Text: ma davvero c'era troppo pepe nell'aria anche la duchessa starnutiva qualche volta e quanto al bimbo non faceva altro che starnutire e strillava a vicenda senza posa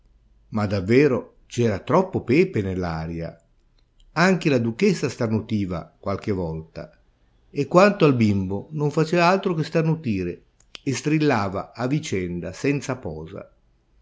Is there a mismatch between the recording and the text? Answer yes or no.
no